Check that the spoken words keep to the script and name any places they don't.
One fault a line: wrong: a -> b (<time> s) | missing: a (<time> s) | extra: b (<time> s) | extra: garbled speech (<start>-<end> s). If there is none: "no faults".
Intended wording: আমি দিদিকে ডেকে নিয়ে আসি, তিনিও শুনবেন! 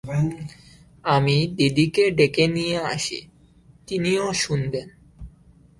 no faults